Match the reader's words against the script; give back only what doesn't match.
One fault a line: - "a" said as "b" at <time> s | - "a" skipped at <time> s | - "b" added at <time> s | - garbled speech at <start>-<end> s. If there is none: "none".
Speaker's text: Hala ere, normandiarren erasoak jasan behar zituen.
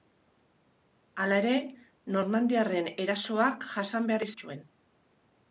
none